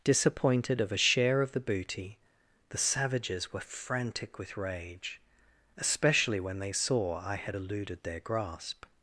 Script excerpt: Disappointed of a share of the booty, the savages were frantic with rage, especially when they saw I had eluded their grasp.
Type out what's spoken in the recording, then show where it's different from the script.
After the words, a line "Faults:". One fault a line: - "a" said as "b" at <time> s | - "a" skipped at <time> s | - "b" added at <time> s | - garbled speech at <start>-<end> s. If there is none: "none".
Disappointed of a share of the booty, the savages were frantic with rage, especially when they saw I had eluded their grasp.
Faults:
none